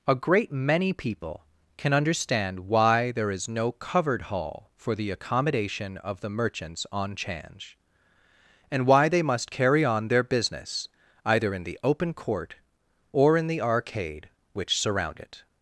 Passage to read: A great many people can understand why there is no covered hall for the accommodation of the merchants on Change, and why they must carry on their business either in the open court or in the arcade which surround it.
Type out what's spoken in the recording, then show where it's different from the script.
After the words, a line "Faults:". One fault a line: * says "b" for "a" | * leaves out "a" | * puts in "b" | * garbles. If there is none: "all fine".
A great many people can understand why there is no covered hall for the accommodation of the merchants on Change, and why they must carry on their business either in the open court or in the arcade which surround it.
Faults:
all fine